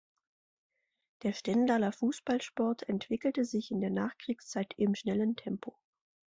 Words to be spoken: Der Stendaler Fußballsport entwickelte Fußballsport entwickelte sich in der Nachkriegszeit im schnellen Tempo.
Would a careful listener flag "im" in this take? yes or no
no